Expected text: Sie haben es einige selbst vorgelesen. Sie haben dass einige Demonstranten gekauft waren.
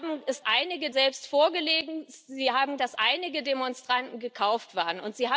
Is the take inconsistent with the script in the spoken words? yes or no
no